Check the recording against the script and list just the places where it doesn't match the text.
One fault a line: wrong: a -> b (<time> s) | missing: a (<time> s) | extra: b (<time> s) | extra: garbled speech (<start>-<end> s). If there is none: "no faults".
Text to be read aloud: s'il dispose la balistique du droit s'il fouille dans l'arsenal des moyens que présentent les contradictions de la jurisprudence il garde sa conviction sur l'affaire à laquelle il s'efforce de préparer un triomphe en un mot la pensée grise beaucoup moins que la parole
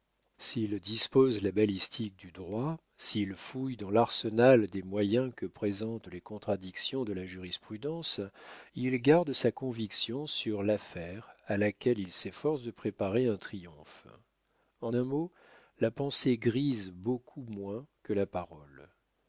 no faults